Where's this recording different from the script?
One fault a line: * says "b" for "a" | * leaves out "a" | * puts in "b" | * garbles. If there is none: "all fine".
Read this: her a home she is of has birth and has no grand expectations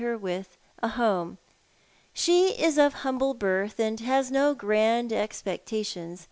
* puts in "with"
* says "humble" for "has"